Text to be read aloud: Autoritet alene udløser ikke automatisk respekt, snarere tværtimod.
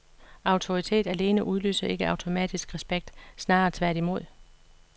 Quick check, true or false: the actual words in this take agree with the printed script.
true